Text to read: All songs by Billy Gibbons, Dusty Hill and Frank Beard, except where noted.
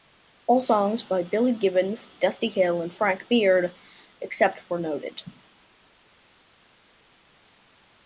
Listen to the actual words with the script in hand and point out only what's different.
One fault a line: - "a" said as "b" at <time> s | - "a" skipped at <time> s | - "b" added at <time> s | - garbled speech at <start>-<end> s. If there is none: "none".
none